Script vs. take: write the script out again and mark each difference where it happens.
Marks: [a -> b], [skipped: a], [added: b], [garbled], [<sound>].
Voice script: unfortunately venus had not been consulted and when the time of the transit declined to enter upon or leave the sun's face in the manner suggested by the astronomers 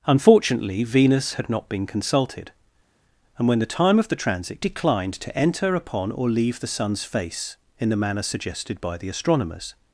unfortunately venus had not been consulted and when the time of the transit declined to enter upon or leave the sun's face in the manner suggested by the astronomers